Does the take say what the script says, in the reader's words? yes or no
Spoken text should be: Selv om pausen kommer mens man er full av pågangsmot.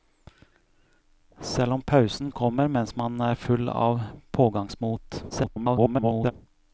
no